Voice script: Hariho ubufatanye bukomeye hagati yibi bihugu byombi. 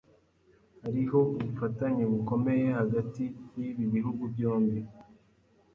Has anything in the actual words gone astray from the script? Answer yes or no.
no